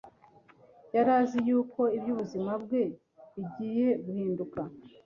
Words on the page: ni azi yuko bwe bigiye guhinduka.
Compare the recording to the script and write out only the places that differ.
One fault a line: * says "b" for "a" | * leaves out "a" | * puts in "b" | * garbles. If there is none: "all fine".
* says "yari" for "ni"
* puts in "iby'ubuzima"